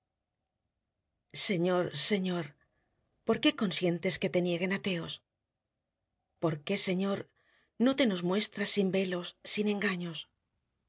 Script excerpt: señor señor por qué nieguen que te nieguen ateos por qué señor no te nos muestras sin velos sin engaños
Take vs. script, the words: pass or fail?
fail